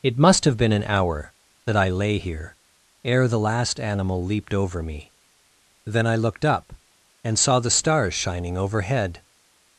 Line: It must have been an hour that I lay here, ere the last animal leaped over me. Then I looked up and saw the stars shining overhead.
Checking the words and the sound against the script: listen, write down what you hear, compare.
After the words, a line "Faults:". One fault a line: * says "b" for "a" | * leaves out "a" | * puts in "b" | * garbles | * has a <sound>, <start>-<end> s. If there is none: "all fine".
It must have been an hour that I lay here, ere the last animal leaped over me. Then I looked up and saw the stars shining overhead.
Faults:
all fine